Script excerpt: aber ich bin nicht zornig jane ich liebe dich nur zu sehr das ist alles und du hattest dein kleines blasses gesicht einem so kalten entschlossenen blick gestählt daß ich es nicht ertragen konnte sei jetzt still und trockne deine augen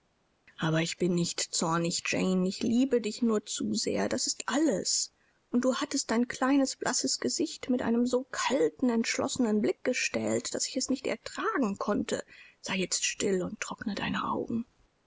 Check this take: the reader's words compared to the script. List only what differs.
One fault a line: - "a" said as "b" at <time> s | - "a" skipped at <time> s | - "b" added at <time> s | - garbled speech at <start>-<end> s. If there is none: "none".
- "mit" added at 7.7 s